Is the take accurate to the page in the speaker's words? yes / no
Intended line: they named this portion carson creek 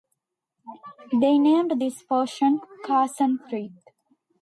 yes